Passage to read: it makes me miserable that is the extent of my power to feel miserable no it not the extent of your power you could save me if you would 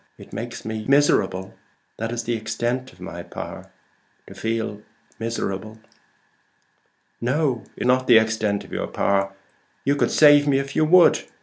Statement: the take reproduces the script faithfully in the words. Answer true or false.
true